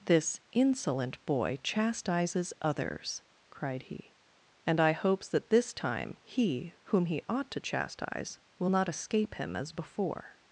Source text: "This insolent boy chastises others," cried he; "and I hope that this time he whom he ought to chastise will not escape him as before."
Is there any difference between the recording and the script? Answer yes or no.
yes